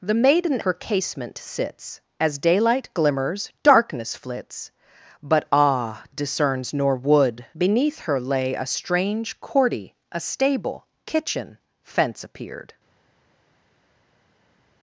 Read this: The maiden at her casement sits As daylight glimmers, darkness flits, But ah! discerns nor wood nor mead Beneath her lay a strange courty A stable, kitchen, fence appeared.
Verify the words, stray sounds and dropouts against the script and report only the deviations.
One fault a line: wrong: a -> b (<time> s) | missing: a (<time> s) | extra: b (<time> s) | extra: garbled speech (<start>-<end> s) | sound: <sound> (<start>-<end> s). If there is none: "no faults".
missing: at (0.6 s)
missing: nor mead (7.5 s)